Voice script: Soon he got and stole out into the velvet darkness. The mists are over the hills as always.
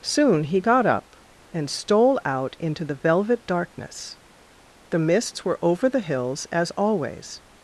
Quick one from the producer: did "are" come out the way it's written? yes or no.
no